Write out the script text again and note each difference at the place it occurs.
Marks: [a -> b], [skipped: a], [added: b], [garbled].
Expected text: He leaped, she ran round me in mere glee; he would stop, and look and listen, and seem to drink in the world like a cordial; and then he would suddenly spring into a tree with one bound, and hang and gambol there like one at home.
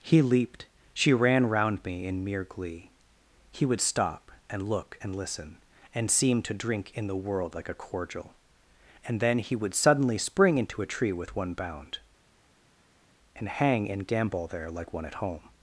He leaped, she ran round me in mere glee; he would stop, and look and listen, and seem to drink in the world like a cordial; and then he would suddenly spring into a tree with one bound, and hang and gambol there like one at home.